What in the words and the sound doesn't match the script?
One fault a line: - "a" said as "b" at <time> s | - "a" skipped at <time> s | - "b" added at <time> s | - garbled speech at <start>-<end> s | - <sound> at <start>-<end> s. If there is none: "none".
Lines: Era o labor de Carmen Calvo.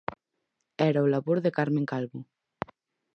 none